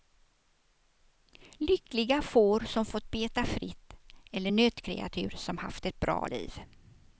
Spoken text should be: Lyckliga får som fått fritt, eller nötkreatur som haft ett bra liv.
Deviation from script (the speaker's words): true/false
true